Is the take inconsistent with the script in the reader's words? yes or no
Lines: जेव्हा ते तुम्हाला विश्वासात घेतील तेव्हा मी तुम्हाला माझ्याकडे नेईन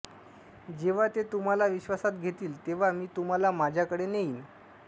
no